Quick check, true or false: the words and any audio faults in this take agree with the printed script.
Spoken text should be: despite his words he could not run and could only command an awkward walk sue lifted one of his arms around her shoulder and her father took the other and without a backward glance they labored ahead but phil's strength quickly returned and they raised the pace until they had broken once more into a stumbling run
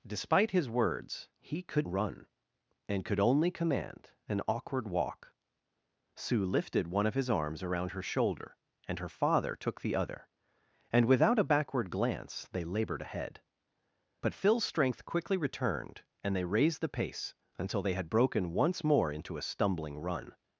false